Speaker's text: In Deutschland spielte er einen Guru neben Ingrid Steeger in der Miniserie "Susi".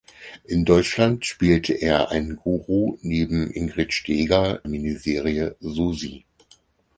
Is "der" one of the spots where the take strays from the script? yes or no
yes